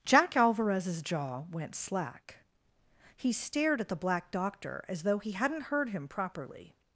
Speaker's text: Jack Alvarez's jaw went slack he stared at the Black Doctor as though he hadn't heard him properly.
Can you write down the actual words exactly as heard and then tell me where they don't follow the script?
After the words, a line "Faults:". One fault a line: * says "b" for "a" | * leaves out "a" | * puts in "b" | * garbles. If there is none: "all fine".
Jack Alvarez's jaw went slack he stared at the Black Doctor as though he hadn't heard him properly.
Faults:
all fine